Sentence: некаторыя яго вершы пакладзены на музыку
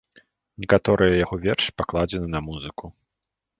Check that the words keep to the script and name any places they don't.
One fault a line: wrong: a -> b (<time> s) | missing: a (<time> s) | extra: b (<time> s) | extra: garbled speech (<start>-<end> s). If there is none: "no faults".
no faults